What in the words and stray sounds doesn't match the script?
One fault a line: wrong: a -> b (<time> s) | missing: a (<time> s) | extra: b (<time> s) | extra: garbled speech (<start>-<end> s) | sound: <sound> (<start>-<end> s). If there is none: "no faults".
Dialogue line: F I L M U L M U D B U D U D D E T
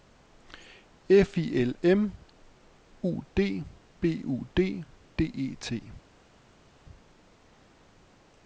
missing: L M U (3.2 s)
missing: U D (4.8 s)